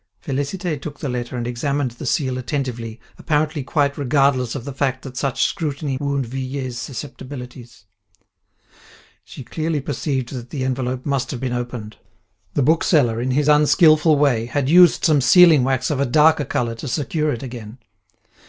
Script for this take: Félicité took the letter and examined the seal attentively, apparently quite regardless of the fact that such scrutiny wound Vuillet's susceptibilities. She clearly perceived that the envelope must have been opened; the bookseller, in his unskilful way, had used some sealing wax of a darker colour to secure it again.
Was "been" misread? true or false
false